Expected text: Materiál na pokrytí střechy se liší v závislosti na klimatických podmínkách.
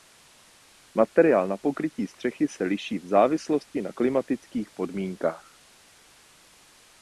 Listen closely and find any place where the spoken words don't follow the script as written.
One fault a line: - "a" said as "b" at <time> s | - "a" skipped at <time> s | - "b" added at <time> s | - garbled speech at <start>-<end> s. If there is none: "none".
none